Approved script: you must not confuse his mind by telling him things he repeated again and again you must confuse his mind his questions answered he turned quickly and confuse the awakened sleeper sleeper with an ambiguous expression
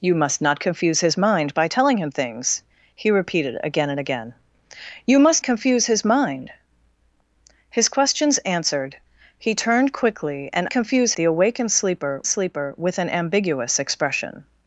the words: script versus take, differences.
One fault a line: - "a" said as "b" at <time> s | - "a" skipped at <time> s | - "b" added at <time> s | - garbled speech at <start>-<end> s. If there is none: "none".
none